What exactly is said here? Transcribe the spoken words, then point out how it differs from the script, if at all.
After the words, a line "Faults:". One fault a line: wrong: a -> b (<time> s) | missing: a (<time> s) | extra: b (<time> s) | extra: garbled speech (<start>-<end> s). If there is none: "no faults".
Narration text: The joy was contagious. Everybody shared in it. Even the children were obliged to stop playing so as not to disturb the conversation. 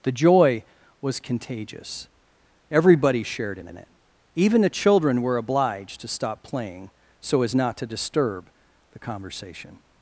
The joy was contagious. Everybody shared in in it. Even the children were obliged to stop playing so as not to disturb the conversation.
Faults:
extra: in (3.7 s)